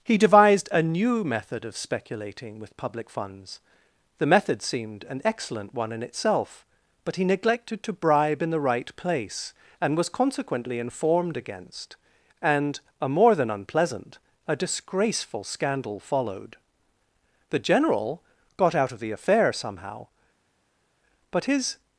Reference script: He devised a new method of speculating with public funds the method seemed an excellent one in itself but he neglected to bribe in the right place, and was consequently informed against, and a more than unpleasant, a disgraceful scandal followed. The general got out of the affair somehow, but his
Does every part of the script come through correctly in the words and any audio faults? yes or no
yes